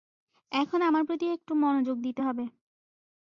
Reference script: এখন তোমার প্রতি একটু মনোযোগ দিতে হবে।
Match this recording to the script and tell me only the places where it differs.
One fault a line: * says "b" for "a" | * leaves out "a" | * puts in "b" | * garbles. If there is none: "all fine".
* says "আমার" for "তোমার"